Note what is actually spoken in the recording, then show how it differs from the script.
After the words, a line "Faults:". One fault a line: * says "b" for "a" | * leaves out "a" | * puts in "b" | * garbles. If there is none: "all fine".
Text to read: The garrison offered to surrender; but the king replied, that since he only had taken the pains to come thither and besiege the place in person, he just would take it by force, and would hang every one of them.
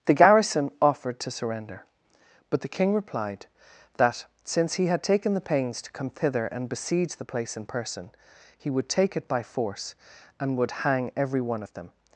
The garrison offered to surrender; but the king replied, that since he had taken the pains to come thither and besiege the place in person, he would take it by force, and would hang every one of them.
Faults:
* leaves out "only"
* leaves out "just"